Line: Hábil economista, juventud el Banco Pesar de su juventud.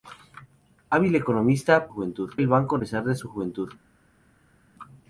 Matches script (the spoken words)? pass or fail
pass